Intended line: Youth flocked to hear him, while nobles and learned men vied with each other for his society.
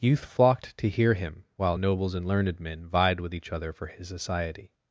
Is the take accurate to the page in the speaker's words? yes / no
yes